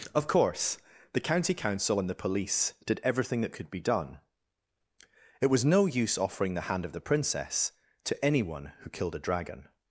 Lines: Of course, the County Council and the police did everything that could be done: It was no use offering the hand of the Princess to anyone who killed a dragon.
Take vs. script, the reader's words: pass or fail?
pass